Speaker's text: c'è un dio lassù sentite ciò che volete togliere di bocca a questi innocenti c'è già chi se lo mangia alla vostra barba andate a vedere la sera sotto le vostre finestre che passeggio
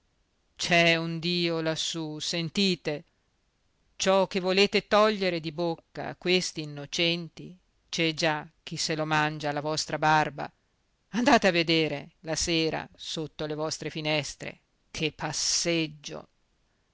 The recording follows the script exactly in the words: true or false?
true